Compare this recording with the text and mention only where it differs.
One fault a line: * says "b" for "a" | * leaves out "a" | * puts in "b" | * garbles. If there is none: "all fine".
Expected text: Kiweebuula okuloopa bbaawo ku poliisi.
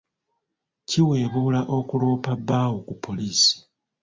all fine